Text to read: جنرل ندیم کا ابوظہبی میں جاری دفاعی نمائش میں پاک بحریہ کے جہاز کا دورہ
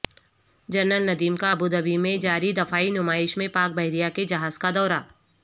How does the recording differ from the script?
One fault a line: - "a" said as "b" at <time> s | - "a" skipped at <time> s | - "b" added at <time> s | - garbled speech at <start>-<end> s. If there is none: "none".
none